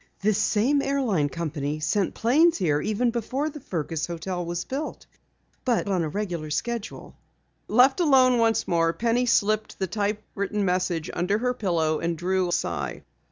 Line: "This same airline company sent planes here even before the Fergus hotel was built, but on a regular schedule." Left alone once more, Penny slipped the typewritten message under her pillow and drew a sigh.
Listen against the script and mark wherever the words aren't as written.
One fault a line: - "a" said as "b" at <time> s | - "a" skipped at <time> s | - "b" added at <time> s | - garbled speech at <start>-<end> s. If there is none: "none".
none